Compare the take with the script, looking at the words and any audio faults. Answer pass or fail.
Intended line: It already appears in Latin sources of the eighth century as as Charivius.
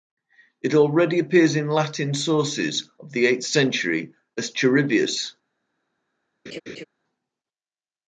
fail